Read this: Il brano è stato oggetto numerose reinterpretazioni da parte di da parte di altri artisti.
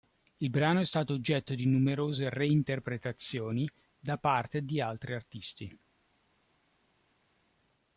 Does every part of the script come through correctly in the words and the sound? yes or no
no